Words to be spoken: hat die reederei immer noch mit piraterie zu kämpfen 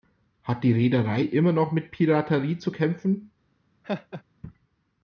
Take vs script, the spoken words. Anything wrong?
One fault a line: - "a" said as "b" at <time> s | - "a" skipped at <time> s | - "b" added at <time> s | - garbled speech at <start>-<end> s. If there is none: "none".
none